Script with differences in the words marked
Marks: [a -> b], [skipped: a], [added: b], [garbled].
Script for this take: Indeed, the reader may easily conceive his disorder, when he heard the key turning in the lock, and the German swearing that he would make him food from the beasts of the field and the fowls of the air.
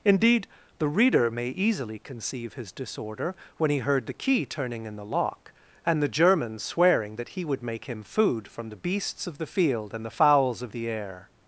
Indeed, the reader may easily conceive his disorder, when he heard the key turning in the lock, and the German swearing that he would make him food from the beasts of the field and the fowls of the air.